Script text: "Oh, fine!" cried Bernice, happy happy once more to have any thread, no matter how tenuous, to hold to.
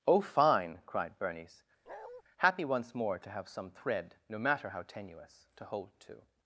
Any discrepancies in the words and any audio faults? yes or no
yes